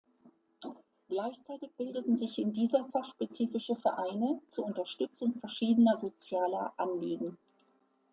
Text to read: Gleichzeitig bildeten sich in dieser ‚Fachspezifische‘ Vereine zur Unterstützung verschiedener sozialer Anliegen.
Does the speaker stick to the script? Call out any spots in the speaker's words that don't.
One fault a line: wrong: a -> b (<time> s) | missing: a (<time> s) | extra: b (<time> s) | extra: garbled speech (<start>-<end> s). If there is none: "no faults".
no faults